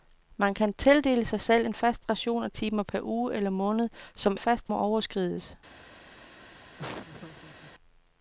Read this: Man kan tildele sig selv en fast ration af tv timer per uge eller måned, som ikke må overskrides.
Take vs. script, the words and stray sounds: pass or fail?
fail